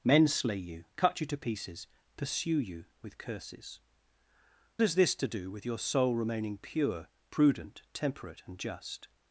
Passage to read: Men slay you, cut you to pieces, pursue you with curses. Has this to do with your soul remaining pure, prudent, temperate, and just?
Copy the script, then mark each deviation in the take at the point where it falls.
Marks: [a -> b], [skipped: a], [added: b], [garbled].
Men slay you, cut you to pieces, pursue you with curses. Has this to do with your soul remaining pure, prudent, temperate, and just?